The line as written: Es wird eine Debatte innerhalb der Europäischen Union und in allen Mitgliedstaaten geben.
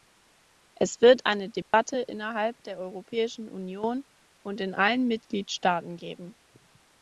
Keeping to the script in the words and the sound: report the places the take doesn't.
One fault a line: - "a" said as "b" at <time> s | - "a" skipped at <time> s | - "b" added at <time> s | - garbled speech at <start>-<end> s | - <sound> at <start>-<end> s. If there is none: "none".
- dropout at 1.6-1.7 s